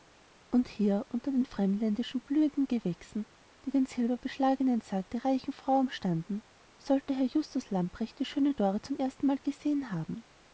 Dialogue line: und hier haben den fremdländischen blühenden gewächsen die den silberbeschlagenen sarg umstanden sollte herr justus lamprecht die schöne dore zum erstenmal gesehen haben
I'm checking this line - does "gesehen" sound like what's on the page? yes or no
yes